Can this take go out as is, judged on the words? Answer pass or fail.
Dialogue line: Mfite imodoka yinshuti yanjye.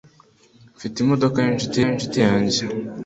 fail